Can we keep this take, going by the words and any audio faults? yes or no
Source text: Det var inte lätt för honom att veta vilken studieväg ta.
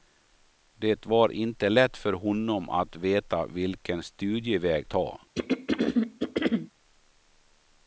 no